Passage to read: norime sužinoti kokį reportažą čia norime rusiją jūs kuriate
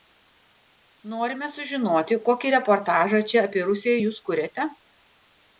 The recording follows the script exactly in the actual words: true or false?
false